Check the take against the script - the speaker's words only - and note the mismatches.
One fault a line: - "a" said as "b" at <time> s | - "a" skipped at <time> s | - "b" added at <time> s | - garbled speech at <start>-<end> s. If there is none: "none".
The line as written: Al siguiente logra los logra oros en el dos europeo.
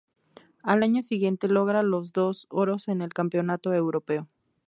- "año" added at 0.8 s
- "logra" said as "dos" at 2.1 s
- "dos" said as "campeonato" at 3.1 s